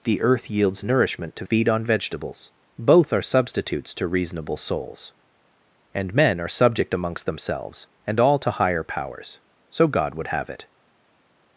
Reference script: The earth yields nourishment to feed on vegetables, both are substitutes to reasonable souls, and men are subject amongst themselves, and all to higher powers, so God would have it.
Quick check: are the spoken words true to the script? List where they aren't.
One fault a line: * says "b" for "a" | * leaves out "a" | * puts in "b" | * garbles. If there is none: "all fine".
all fine